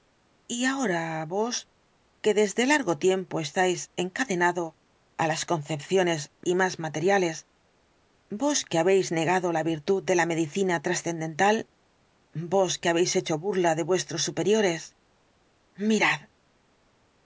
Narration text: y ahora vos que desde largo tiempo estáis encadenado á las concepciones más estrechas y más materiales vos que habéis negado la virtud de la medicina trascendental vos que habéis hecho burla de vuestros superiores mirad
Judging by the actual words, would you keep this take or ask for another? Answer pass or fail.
fail